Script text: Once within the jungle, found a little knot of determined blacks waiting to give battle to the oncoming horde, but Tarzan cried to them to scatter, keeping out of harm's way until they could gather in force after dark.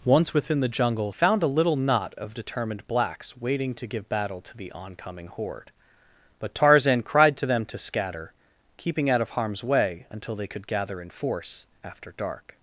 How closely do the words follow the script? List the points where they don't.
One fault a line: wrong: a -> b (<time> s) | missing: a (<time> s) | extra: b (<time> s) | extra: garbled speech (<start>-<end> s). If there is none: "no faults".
no faults